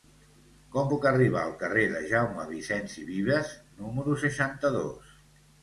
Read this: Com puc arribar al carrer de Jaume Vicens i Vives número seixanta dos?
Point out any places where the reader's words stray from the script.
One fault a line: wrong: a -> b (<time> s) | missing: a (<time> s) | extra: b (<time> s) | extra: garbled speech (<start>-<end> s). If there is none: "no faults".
no faults